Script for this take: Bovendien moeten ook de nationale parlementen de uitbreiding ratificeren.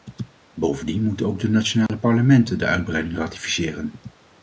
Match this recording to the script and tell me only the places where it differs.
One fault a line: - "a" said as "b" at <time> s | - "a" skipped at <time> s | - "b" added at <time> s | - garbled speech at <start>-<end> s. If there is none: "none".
none